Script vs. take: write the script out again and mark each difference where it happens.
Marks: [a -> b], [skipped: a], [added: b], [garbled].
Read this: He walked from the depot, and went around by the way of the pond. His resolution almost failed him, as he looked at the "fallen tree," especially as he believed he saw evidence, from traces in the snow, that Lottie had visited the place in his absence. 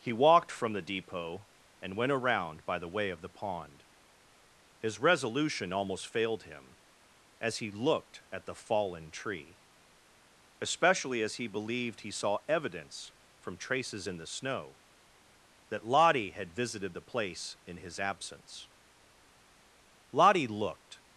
He walked from the depot, and went around by the way of the pond. His resolution almost failed him, as he looked at the "fallen tree," especially as he believed he saw evidence, from traces in the snow, that Lottie had visited the place in his absence. [added: Lottie looked]